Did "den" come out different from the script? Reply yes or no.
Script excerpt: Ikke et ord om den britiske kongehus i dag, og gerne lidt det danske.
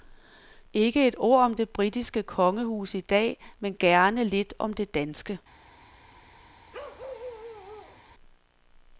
yes